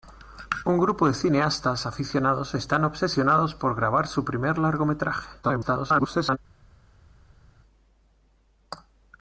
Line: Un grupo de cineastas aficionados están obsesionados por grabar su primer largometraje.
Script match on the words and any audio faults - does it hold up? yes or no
no